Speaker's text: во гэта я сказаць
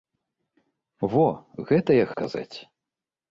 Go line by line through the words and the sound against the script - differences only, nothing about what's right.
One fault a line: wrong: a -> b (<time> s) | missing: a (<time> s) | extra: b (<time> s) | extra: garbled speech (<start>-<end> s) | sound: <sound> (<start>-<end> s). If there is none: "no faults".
no faults